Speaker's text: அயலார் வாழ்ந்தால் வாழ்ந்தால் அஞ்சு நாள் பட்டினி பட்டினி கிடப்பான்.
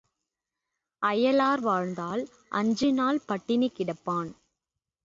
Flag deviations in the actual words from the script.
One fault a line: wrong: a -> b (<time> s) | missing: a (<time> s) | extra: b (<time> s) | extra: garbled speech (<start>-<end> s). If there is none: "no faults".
missing: வாழ்ந்தால் (2.2 s)
missing: பட்டினி (3.7 s)